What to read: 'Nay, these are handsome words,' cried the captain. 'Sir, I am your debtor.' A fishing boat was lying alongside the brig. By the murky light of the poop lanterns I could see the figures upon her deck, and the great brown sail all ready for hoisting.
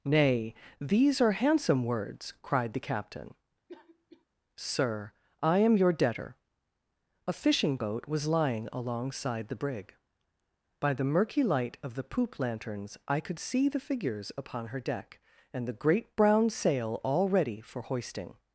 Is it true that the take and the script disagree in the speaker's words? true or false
false